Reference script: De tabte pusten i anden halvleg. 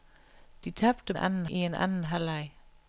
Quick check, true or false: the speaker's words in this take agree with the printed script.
false